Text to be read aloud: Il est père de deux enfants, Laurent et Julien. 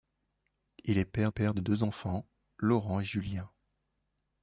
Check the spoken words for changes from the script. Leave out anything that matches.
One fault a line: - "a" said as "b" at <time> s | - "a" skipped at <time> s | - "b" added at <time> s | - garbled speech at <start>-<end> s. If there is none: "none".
- "père" added at 1.3 s